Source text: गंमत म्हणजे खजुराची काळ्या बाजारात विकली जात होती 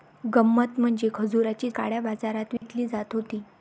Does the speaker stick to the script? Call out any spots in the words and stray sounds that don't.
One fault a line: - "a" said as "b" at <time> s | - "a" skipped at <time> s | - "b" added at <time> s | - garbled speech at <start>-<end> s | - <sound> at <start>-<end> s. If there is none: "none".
- dropout at 2.6-2.6 s